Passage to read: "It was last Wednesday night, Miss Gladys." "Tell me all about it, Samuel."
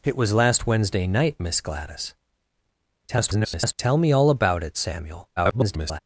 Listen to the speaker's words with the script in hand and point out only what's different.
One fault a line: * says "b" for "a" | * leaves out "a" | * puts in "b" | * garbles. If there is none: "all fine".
* garbles
* garbles